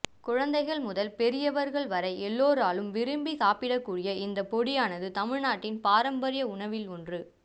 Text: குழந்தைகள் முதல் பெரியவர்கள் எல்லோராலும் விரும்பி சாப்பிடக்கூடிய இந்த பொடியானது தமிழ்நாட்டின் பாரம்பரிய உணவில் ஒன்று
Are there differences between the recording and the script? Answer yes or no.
yes